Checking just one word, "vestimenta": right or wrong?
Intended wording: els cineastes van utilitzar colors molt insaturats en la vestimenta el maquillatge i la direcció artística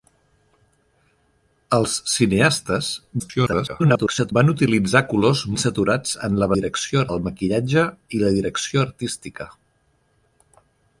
wrong